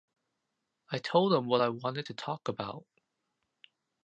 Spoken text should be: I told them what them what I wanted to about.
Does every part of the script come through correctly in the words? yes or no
no